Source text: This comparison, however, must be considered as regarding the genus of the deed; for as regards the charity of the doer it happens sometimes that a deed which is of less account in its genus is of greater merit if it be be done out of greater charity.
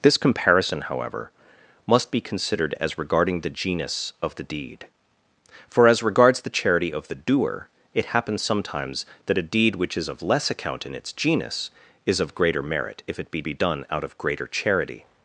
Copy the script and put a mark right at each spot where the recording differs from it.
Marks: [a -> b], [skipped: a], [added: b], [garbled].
This comparison, however, must be considered as regarding the genus of the deed; for as regards the charity of the doer it happens sometimes that a deed which is of less account in its genus is of greater merit if it be be done out of greater charity.